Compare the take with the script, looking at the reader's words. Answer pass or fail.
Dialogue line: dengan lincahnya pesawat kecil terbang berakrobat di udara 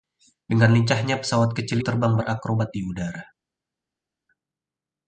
pass